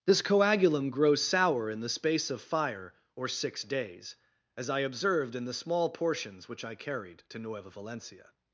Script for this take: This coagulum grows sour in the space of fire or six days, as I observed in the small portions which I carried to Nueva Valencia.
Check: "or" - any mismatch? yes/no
no